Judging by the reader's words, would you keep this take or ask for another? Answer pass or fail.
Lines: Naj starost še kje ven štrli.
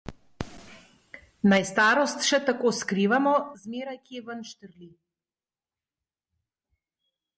fail